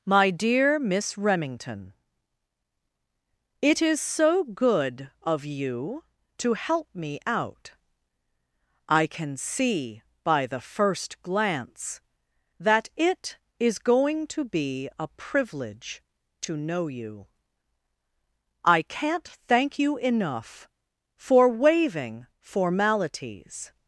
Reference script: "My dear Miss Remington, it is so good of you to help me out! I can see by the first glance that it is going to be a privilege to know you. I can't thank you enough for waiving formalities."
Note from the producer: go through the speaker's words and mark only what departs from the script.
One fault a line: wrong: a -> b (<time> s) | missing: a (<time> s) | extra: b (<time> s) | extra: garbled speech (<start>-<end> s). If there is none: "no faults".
no faults